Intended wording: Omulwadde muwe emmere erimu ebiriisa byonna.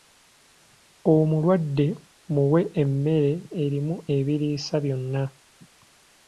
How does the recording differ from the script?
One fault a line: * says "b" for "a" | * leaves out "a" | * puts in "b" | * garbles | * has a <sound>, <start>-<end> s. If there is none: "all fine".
all fine